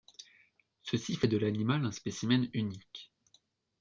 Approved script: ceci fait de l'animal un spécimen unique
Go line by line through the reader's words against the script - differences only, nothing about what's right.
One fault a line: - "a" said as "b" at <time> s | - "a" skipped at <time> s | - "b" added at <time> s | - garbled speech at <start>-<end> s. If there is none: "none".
none